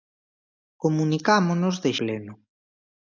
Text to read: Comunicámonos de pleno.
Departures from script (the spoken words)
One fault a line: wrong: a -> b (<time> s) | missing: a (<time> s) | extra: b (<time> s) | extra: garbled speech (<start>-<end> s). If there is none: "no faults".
no faults